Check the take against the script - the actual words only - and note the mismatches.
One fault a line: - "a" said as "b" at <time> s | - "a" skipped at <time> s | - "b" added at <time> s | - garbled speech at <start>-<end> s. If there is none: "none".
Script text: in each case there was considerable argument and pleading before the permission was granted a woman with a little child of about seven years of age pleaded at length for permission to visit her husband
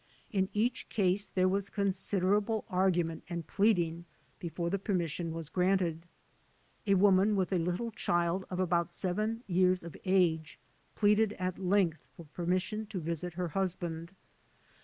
none